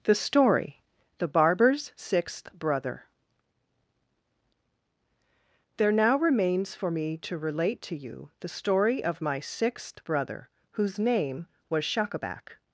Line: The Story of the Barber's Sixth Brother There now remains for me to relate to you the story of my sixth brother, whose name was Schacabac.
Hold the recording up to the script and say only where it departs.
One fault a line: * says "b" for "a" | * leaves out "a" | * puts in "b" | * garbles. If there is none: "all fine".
* leaves out "of"